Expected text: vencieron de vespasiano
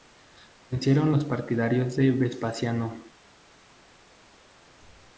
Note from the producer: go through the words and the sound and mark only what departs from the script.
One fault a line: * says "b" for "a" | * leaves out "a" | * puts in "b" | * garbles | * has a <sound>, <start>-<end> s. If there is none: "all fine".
* puts in "los partidarios"